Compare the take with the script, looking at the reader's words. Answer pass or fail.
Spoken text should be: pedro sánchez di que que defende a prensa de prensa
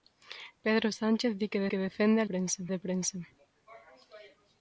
pass